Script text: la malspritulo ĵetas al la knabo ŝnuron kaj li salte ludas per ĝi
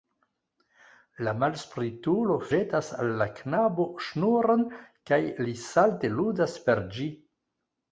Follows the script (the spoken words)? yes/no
yes